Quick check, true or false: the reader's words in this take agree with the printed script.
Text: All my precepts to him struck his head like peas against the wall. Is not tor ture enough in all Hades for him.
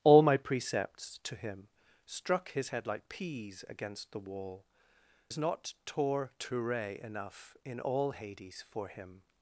true